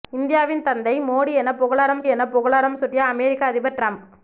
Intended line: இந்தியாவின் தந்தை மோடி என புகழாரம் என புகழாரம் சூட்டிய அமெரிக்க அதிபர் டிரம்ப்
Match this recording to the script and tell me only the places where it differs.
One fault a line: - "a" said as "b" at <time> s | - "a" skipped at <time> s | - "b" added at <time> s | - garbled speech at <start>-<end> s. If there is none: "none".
none